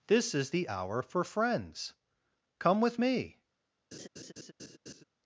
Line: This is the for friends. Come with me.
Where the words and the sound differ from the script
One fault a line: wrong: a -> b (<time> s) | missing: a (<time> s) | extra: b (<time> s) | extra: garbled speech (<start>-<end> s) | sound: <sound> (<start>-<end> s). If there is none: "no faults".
extra: hour (0.7 s)
sound: laugh (3.9-5.0 s)